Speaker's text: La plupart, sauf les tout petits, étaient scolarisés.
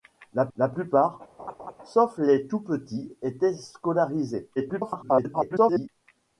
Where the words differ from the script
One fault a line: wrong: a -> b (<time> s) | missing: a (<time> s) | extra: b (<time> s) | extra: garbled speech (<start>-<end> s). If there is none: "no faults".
extra: la (0.6 s)
extra: garbled speech (4.6-5.9 s)